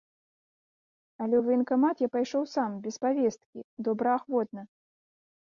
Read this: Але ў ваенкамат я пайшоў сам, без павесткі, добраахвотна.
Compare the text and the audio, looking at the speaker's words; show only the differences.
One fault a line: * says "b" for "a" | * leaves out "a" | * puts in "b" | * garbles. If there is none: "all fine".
all fine